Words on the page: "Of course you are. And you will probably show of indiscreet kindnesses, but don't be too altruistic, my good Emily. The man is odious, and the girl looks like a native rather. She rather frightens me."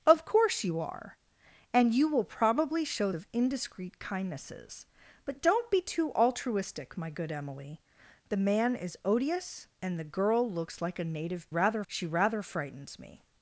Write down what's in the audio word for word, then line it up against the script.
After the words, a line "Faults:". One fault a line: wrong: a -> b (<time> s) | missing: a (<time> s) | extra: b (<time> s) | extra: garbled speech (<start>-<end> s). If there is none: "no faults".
"Of course you are. And you will probably show of indiscreet kindnesses, but don't be too altruistic, my good Emily. The man is odious, and the girl looks like a native rather. She rather frightens me."
Faults:
no faults